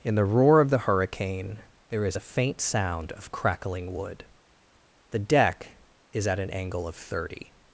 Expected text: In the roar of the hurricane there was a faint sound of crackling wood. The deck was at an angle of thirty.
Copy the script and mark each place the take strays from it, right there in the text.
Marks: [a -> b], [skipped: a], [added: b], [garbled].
In the roar of the hurricane there [was -> is] a faint sound of crackling wood. The deck [was -> is] at an angle of thirty.